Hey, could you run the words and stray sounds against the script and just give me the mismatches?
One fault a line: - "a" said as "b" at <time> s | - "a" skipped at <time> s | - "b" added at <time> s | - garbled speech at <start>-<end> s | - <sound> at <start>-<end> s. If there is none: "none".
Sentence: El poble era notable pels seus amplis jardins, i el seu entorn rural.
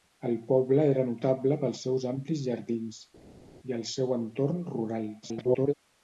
- garbled speech at 5.2-5.7 s